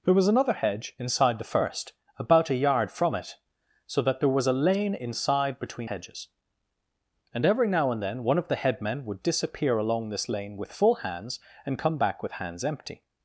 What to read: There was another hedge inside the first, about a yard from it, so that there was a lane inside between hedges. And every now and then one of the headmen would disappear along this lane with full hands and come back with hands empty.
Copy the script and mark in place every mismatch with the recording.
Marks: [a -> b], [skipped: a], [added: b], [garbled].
There was another hedge inside the first, about a yard from it, so that there was a lane inside between hedges. And every now and then one of the headmen would disappear along this lane with full hands and come back with hands empty.